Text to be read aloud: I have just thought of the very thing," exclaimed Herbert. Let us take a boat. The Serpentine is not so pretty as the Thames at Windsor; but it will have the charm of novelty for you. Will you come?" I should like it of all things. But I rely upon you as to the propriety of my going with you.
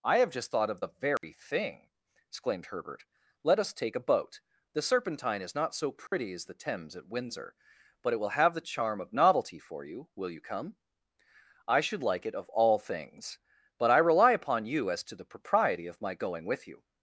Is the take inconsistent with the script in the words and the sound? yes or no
yes